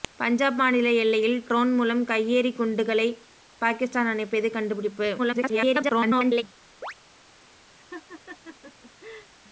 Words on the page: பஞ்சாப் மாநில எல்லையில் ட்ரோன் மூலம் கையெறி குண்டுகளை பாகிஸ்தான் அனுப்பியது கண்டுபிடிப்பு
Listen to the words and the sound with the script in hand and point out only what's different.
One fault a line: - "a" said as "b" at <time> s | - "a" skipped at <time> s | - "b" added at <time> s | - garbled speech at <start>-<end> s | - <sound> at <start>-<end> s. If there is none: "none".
- garbled speech at 5.2-6.4 s
- chirp at 6.8-6.9 s
- laugh at 7.8-9.3 s